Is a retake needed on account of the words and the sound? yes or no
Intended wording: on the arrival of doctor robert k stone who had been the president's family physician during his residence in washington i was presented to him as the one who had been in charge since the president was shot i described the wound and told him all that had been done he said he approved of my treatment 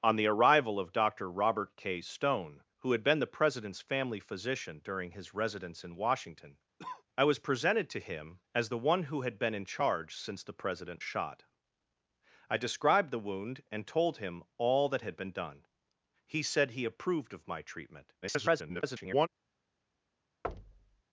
yes